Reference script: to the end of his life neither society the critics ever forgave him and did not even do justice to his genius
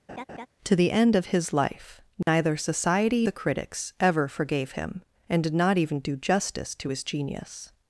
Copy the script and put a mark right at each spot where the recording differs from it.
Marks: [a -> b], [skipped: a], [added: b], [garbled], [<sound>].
[laugh] to the end of his life neither [dropout] society the critics ever forgave him and did not even do justice to his genius